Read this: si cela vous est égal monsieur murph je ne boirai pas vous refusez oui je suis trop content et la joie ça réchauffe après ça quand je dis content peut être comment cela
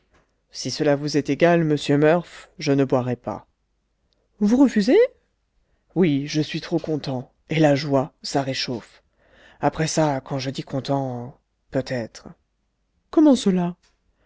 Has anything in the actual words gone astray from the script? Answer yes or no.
no